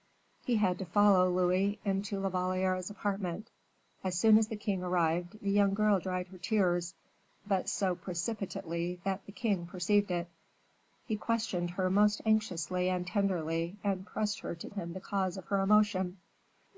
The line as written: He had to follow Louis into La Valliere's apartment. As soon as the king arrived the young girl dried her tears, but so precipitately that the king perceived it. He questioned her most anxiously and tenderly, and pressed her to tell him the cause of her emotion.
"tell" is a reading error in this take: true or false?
true